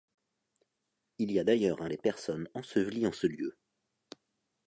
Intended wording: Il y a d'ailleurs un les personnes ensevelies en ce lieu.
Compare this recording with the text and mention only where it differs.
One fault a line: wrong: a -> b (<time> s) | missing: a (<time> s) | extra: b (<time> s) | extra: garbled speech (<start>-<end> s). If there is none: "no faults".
no faults